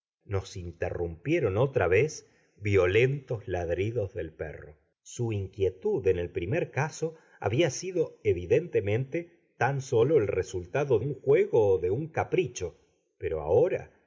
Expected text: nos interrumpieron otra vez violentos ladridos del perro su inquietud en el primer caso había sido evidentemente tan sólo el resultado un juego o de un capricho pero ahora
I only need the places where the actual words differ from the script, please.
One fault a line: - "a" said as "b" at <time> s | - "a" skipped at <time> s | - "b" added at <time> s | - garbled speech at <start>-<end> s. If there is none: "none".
none